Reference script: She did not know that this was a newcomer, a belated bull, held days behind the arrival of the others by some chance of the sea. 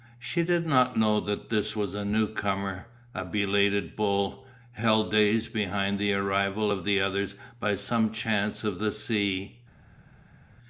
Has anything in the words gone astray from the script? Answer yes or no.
no